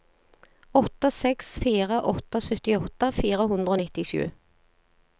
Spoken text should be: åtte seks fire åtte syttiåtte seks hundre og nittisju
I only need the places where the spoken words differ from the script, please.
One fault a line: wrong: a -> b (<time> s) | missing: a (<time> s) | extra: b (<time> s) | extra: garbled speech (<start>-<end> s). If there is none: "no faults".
wrong: seks -> fire (3.2 s)